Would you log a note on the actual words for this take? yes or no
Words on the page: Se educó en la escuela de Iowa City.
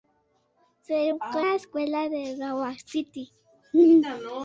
yes